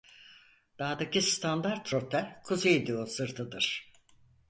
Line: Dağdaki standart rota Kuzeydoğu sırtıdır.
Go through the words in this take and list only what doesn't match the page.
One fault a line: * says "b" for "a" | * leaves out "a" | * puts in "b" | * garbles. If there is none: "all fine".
all fine